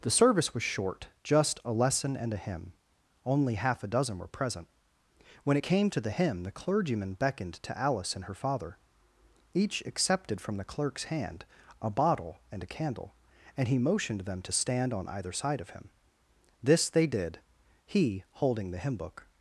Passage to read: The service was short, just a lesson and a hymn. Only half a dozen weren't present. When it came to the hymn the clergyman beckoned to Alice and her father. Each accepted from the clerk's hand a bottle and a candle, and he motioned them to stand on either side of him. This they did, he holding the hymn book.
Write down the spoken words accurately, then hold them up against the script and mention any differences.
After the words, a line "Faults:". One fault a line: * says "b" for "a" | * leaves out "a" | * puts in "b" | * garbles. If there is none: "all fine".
The service was short, just a lesson and a hymn. Only half a dozen were present. When it came to the hymn the clergyman beckoned to Alice and her father. Each accepted from the clerk's hand a bottle and a candle, and he motioned them to stand on either side of him. This they did, he holding the hymn book.
Faults:
* says "were" for "weren't"